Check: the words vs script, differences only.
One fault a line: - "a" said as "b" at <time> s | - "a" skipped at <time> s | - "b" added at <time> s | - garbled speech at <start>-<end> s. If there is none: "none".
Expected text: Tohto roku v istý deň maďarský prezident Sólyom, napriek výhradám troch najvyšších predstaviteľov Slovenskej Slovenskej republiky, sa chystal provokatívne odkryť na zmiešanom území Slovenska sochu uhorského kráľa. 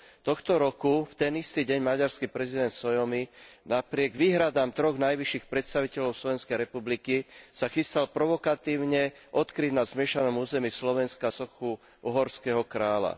- "ten" added at 1.1 s
- "Slovenskej" skipped at 6.6 s